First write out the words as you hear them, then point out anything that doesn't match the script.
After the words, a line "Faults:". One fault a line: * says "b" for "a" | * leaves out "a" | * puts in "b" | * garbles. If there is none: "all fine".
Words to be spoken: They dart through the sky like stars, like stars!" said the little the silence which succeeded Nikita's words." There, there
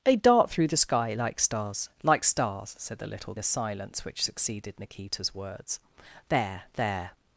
They dart through the sky like stars, like stars!" said the little the silence which succeeded Nikita's words." There, there
Faults:
all fine